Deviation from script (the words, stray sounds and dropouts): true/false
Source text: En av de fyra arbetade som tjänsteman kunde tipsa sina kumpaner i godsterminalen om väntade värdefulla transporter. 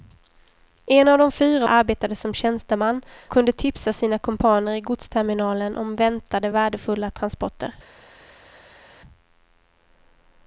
false